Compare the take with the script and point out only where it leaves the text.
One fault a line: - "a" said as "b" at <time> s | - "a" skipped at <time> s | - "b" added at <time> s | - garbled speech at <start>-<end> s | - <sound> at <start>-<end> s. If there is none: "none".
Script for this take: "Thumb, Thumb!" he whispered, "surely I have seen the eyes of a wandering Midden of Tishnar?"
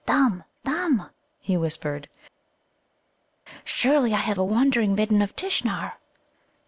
- "seen the eyes" skipped at 4.4 s